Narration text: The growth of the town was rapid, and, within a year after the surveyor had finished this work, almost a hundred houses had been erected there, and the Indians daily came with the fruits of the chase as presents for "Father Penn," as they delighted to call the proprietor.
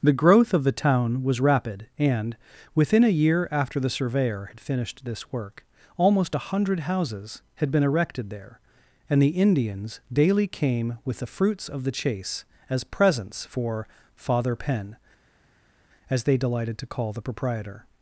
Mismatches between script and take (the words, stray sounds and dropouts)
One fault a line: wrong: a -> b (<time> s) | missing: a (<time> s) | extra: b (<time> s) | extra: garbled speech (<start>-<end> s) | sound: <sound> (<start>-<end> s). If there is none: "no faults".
no faults